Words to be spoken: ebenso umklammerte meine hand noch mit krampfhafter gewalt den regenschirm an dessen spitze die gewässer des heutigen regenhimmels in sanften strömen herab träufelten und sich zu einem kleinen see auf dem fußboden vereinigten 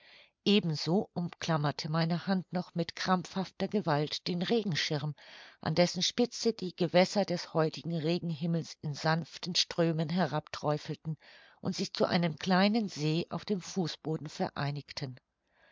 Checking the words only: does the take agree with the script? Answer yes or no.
yes